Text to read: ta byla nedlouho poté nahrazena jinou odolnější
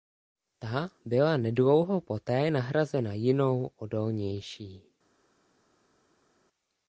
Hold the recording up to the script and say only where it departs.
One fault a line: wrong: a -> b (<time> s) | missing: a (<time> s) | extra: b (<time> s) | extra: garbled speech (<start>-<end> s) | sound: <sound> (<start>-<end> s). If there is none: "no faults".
no faults